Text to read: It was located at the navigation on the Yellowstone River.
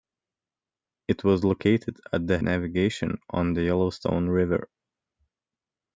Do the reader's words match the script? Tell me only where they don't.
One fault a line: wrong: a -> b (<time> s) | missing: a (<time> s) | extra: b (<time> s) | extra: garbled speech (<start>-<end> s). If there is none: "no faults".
no faults